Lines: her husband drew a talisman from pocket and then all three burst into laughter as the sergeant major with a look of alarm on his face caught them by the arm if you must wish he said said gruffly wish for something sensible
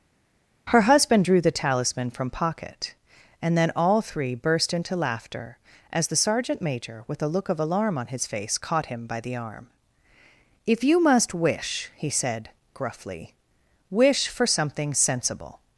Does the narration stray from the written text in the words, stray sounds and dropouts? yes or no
yes